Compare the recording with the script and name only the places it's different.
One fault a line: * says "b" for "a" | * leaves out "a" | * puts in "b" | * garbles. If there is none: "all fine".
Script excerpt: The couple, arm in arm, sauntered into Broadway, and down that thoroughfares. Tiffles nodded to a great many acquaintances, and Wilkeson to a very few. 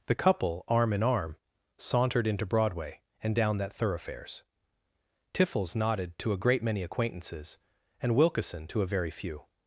all fine